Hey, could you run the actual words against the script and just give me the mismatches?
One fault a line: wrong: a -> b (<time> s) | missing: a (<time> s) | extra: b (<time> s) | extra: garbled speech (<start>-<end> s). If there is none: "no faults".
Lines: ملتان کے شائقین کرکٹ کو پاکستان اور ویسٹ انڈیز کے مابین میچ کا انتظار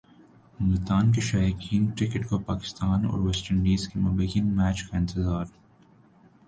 no faults